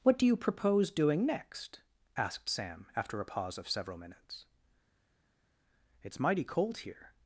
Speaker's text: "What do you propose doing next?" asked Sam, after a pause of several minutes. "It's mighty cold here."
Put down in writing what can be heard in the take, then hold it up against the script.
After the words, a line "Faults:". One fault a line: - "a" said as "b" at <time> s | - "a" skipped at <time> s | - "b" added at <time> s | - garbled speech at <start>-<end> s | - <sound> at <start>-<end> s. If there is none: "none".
"What do you propose doing next?" asked Sam, after a pause of several minutes. "It's mighty cold here."
Faults:
none